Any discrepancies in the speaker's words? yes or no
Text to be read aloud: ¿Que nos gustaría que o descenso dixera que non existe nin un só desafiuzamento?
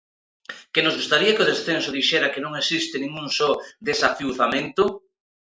no